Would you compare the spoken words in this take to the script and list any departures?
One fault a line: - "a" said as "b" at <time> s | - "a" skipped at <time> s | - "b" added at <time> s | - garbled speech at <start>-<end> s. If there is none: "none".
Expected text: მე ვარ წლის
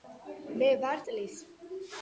none